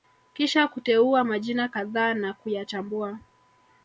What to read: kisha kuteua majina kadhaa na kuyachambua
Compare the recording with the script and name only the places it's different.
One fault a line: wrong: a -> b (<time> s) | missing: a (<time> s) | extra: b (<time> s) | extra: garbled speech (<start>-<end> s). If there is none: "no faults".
no faults